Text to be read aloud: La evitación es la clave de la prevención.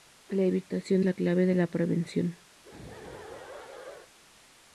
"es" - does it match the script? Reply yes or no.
no